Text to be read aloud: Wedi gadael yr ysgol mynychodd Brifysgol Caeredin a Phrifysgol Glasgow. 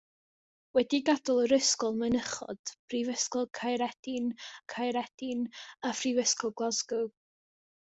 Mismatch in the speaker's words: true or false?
true